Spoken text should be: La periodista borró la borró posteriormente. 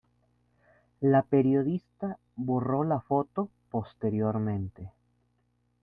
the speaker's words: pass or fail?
fail